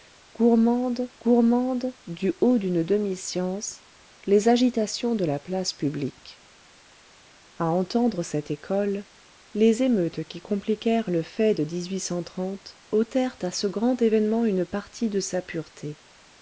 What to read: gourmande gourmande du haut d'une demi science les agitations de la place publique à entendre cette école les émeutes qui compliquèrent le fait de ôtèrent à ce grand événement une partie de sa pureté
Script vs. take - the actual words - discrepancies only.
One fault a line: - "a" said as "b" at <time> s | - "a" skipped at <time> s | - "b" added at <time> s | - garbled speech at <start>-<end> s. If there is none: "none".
none